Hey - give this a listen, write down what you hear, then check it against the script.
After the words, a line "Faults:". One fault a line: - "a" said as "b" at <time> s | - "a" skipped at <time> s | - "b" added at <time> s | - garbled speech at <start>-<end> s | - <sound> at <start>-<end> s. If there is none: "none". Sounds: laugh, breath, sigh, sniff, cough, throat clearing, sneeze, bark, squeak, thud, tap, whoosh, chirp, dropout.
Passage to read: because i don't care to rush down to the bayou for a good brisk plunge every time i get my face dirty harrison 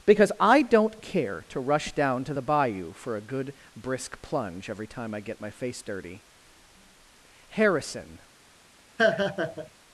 because i don't care to rush down to the bayou for a good brisk plunge every time i get my face dirty harrison
Faults:
- laugh at 9.0-9.7 s